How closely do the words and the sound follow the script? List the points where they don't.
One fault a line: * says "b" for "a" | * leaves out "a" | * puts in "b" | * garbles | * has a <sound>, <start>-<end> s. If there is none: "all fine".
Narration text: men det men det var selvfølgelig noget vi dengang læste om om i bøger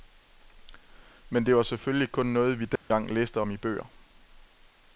* leaves out "men det"
* puts in "kun"
* has a dropout, 2.8-2.9 s
* leaves out "om"